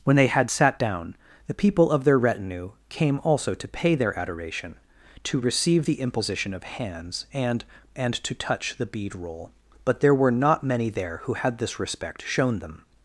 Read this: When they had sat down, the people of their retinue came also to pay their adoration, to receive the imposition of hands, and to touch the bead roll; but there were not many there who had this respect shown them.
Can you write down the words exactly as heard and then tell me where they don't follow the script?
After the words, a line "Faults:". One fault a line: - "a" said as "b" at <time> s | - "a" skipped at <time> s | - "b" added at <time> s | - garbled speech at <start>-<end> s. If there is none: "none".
When they had sat down, the people of their retinue came also to pay their adoration, to receive the imposition of hands, and and to touch the bead roll; but there were not many there who had this respect shown them.
Faults:
- "and" added at 8.0 s